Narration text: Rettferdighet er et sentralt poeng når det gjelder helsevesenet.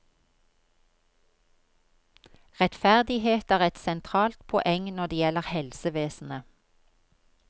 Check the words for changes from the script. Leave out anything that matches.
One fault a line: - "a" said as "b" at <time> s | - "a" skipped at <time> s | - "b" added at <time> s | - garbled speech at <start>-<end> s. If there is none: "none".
none